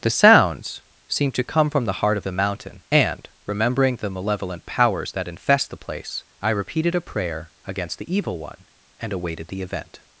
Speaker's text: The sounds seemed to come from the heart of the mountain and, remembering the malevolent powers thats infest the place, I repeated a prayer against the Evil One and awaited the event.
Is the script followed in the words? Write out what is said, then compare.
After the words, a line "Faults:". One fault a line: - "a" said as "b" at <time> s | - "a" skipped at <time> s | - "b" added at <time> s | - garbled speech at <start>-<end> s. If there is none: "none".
The sounds seemed to come from the heart of the mountain and, remembering the malevolent powers that infest the place, I repeated a prayer against the Evil One and awaited the event.
Faults:
- "thats" said as "that" at 5.1 s